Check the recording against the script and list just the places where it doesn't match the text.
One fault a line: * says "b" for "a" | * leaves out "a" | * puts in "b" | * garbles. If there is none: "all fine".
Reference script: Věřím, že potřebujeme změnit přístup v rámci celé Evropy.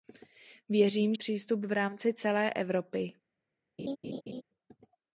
* leaves out "že potřebujeme změnit"